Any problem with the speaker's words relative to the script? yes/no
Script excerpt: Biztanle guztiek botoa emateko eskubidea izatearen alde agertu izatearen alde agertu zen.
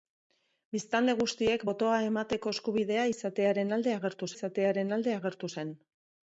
no